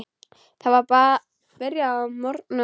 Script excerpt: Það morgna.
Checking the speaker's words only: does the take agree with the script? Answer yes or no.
no